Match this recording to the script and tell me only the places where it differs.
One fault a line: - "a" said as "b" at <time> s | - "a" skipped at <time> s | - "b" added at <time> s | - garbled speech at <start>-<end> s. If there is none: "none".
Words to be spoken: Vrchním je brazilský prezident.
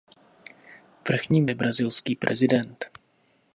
none